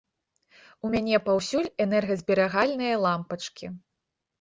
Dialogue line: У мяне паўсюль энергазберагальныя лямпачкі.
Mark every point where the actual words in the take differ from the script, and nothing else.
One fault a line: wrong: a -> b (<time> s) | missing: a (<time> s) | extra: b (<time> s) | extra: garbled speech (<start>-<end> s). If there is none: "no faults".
no faults